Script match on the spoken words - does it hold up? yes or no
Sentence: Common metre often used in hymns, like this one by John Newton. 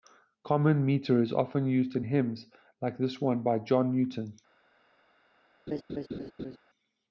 no